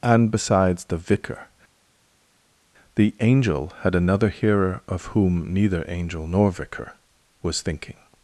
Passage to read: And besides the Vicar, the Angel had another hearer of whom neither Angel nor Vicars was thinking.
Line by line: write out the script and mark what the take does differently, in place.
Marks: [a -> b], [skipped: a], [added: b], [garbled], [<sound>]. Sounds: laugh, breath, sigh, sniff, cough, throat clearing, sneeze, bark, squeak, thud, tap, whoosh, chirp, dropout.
And besides the Vicar, the Angel had another hearer of whom neither Angel nor [Vicars -> Vicar] was thinking.